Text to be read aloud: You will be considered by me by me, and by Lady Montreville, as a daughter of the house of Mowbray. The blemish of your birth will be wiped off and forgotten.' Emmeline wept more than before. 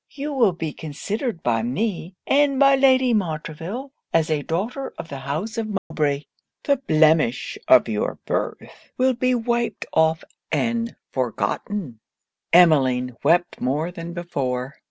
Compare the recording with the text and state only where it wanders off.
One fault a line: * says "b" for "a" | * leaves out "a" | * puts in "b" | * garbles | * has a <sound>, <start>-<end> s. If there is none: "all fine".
* leaves out "by me"
* has a dropout, 5.8-5.9 s